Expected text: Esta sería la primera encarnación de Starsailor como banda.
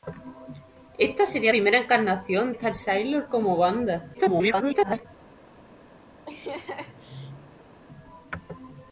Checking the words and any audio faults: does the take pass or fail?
fail